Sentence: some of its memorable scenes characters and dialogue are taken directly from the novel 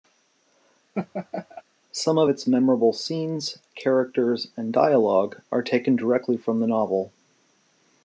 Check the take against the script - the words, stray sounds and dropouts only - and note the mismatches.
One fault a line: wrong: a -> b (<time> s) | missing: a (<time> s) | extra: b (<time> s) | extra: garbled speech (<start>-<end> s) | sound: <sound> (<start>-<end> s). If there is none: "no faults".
sound: laugh (0.9-1.6 s)